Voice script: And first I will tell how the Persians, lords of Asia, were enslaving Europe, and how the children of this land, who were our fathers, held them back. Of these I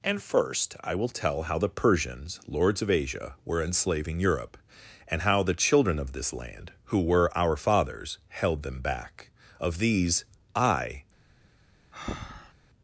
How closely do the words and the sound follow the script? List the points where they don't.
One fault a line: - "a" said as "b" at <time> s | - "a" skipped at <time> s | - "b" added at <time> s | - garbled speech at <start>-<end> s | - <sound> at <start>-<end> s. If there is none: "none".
- breath at 11.9-12.5 s